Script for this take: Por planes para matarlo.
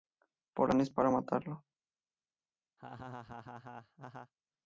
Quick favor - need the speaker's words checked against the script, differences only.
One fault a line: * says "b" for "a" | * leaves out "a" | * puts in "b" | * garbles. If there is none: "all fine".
all fine